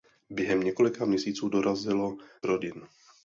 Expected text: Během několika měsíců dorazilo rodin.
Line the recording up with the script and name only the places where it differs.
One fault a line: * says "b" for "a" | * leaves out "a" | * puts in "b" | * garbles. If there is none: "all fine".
all fine